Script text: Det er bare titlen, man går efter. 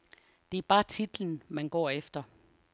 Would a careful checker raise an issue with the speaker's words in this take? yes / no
no